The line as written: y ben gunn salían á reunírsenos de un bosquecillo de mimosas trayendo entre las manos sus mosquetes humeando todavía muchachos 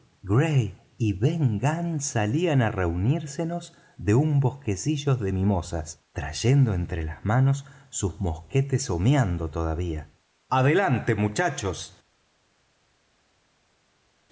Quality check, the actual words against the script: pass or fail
fail